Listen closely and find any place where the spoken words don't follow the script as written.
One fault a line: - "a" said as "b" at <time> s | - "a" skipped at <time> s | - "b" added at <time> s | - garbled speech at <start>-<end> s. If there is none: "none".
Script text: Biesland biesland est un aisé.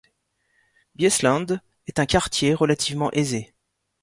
- "biesland" skipped at 1.6 s
- "quartier relativement" added at 2.0 s